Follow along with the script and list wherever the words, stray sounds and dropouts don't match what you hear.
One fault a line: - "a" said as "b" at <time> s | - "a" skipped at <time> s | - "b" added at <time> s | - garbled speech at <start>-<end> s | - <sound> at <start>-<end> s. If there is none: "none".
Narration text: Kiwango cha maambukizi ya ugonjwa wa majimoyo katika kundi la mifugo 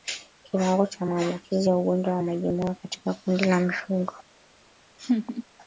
- laugh at 5.0-5.4 s